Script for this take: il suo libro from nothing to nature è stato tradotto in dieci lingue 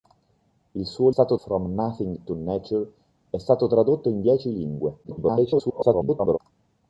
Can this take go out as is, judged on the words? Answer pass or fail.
fail